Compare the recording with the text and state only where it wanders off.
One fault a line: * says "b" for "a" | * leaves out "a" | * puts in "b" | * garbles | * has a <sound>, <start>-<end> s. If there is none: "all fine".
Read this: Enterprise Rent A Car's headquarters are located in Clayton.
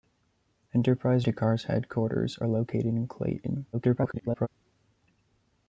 * leaves out "Rent"
* garbles